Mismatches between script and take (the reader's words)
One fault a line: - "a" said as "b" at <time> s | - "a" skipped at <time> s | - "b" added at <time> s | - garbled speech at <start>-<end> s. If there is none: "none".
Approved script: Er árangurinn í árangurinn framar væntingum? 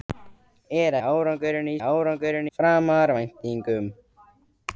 none